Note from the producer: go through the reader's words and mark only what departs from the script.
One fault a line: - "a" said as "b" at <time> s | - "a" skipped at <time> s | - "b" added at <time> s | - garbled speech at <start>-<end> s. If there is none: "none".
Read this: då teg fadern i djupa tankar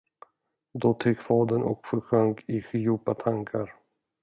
- "och försjönk" added at 1.6 s